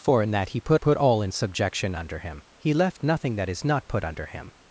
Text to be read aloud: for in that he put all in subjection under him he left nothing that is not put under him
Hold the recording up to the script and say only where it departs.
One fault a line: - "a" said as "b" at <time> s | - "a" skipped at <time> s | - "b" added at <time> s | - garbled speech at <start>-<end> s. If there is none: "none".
- "put" added at 0.7 s